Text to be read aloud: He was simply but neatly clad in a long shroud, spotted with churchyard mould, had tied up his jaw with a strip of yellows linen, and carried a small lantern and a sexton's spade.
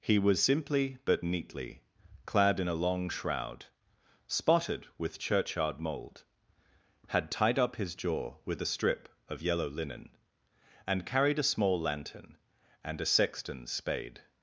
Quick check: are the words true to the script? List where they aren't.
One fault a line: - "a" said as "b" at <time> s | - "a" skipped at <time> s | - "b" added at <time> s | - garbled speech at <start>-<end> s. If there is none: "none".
- "yellows" said as "yellow" at 9.4 s